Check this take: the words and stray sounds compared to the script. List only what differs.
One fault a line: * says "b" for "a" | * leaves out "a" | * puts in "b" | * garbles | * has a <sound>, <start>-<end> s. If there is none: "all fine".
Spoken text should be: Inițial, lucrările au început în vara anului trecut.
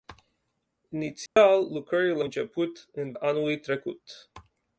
* has a dropout, 1.3-1.4 s
* leaves out "au"
* leaves out "vara"